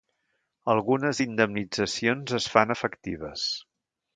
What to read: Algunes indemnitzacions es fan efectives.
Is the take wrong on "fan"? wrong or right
right